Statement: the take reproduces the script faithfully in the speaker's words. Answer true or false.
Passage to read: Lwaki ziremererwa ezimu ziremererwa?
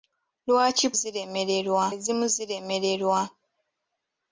true